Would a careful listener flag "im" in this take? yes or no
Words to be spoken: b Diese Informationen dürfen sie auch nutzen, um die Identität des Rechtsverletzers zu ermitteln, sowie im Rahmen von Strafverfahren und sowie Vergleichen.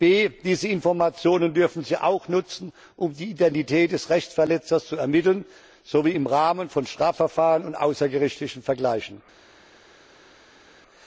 no